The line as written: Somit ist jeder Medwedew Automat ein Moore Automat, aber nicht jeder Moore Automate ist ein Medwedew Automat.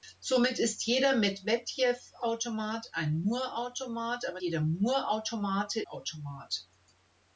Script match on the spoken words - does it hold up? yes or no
no